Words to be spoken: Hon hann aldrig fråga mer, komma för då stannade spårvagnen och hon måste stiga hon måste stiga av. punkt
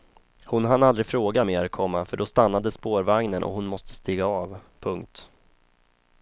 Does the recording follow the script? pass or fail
fail